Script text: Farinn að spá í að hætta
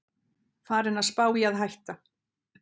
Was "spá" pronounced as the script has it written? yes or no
yes